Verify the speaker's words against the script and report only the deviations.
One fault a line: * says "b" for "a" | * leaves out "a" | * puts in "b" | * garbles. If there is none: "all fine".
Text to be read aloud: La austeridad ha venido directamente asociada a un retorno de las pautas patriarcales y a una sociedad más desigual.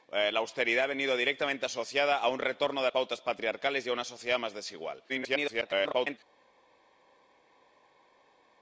* leaves out "las"
* garbles